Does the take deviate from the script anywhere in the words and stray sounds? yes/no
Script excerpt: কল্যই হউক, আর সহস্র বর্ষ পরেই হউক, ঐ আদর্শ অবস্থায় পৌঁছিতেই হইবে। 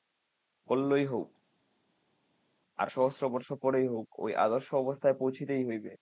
no